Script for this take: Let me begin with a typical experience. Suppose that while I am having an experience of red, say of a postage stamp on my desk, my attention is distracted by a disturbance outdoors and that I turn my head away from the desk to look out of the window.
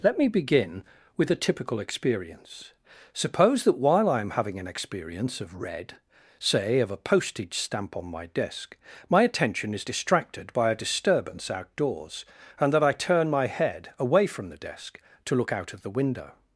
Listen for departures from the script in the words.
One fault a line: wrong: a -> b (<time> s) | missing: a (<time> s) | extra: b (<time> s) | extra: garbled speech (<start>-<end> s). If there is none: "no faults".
no faults